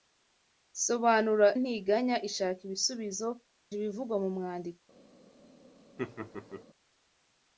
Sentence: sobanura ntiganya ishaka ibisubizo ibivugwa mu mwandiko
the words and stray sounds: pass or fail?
fail